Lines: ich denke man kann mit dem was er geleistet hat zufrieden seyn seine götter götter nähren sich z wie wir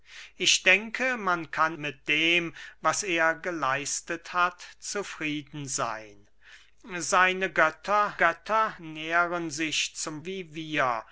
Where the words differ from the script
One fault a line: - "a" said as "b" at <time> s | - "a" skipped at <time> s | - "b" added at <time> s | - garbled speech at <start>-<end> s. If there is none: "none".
none